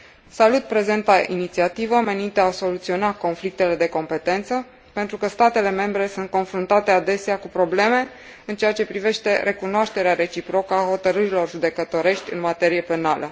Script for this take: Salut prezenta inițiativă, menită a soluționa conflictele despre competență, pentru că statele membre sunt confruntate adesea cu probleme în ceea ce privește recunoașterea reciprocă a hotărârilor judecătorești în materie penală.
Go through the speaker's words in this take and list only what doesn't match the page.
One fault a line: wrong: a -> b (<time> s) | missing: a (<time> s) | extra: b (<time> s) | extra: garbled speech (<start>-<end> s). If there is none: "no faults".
wrong: despre -> de (3.7 s)